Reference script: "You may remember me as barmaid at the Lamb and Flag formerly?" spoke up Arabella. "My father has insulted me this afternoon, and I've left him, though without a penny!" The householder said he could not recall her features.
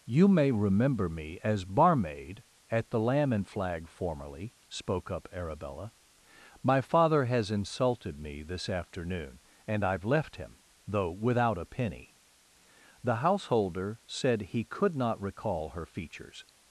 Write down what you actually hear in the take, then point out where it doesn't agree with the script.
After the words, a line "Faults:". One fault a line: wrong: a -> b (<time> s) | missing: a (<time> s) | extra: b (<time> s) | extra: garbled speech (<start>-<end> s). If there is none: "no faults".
"You may remember me as barmaid at the Lamb and Flag formerly?" spoke up Arabella. "My father has insulted me this afternoon, and I've left him, though without a penny!" The householder said he could not recall her features.
Faults:
no faults